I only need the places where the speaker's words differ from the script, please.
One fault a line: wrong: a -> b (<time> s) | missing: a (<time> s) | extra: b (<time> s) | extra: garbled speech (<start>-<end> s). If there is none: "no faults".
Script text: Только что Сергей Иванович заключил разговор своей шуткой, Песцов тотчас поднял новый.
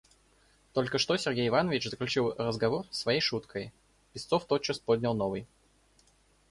no faults